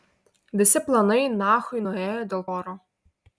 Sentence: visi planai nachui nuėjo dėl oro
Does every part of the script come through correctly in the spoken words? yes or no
yes